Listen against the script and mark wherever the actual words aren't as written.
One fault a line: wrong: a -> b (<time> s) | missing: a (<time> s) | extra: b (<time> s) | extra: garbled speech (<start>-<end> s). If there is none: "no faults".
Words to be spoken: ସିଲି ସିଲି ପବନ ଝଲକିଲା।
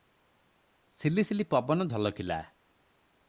no faults